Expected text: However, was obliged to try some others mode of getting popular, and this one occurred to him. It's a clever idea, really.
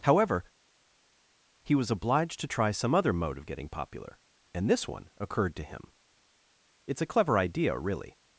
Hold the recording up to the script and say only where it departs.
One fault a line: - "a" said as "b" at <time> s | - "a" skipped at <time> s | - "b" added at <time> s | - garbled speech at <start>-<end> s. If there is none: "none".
- "he" added at 1.6 s
- "others" said as "other" at 2.9 s